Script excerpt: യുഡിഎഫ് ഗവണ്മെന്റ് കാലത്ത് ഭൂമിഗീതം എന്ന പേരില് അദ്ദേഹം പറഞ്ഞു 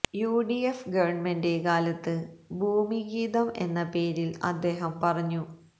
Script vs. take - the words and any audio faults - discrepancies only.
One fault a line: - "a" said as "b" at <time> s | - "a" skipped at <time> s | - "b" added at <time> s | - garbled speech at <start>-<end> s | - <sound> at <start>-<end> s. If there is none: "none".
none